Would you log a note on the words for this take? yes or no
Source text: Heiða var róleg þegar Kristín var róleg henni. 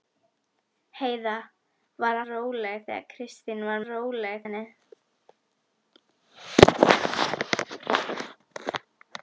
no